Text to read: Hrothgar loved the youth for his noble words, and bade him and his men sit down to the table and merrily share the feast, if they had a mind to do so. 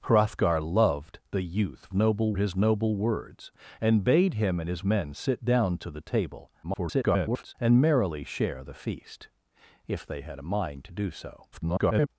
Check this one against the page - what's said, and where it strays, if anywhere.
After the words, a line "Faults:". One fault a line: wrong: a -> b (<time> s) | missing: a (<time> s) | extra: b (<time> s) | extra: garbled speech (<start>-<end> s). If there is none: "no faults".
Hrothgar loved the youth noble his noble words, and bade him and his men sit down to the table [garbled] and merrily share the feast, if they had a mind to do so. [garbled]
Faults:
wrong: for -> noble (1.9 s)
extra: garbled speech (6.6-7.5 s)
extra: garbled speech (11.5-12.1 s)